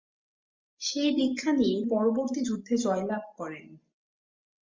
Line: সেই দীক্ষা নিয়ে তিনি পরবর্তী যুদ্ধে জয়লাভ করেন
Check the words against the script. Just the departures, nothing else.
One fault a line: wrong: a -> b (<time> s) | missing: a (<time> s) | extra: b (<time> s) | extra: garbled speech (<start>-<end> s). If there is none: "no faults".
missing: তিনি (1.8 s)